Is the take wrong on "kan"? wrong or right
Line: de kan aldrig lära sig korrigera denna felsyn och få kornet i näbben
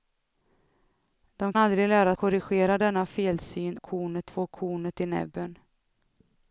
wrong